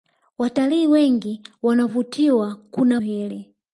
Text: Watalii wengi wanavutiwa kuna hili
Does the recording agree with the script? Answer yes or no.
yes